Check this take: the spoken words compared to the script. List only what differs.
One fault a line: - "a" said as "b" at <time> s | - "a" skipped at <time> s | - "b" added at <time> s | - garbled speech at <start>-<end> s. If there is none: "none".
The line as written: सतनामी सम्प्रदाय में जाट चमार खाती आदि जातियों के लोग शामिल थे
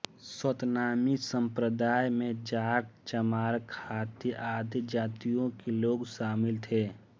none